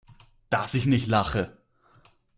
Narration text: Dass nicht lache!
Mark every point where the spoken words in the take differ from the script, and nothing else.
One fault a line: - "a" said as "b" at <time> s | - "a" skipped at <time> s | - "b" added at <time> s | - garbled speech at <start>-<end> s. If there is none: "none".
- "ich" added at 0.7 s